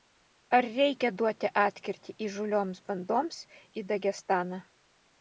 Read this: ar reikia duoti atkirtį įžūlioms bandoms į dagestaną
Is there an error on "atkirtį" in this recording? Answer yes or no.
no